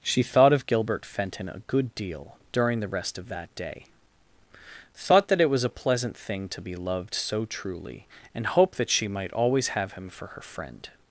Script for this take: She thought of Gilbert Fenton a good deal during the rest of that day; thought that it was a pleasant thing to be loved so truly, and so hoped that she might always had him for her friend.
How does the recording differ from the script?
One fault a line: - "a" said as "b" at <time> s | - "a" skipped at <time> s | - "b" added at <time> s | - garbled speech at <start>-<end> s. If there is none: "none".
- "so" skipped at 8.4 s
- "had" said as "have" at 9.7 s